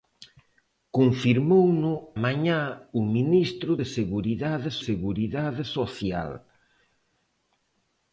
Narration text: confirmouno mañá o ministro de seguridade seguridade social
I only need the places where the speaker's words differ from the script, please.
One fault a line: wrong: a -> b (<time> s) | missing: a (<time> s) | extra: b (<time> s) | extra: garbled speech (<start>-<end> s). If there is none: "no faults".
no faults